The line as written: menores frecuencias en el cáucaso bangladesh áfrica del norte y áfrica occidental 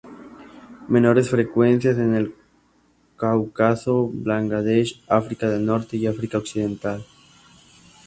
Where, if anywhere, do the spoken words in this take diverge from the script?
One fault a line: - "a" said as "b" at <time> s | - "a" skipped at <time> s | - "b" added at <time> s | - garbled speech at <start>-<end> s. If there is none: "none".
none